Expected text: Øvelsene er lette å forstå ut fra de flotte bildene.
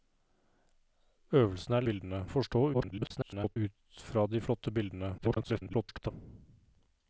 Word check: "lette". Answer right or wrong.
wrong